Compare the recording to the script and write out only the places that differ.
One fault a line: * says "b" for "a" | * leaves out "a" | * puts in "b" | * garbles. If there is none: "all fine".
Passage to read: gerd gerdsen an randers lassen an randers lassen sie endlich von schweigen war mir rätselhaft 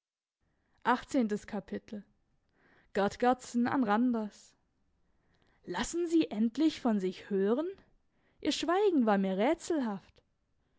* says "sie endlich von sich hören ihr" for "an randers lassen sie endlich von"